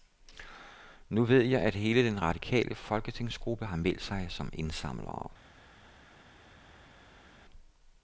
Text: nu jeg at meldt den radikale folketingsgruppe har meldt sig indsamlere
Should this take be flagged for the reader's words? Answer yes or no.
yes